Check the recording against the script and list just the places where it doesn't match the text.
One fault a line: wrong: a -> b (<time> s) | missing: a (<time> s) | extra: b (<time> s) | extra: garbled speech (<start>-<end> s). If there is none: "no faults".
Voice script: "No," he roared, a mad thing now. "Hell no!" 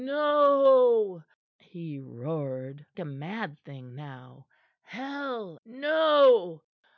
no faults